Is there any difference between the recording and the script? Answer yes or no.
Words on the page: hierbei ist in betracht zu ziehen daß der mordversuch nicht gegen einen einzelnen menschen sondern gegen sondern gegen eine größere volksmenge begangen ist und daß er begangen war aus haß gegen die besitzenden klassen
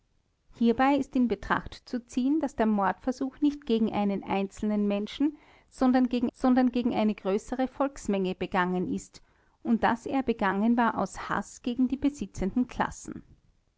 no